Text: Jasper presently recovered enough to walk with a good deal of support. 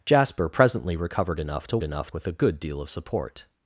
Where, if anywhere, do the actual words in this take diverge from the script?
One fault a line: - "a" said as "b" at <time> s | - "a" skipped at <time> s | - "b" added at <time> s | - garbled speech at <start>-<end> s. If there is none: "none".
- "walk" said as "enough" at 1.8 s